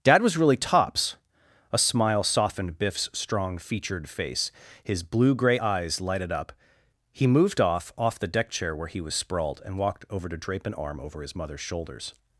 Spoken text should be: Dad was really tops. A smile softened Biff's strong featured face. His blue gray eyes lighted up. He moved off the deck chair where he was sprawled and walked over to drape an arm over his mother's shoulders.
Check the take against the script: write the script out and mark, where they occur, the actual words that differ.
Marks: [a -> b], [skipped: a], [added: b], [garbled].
Dad was really tops. A smile softened Biff's strong featured face. His blue gray eyes lighted up. He moved off [added: off] the deck chair where he was sprawled and walked over to drape an arm over his mother's shoulders.